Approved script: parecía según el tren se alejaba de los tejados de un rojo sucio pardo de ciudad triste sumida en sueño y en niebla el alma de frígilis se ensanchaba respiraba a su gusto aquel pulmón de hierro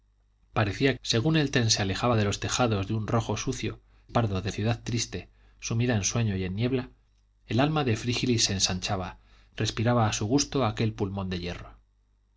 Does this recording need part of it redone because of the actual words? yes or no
no